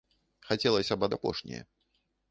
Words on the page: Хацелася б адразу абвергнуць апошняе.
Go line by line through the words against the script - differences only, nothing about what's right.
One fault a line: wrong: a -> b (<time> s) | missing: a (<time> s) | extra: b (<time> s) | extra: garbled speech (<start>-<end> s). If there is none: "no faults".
missing: адразу абвергнуць (1.1 s)